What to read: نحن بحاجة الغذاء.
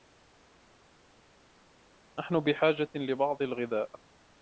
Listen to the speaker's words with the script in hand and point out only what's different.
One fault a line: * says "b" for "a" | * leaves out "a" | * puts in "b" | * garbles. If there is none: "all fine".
* puts in "لبعض"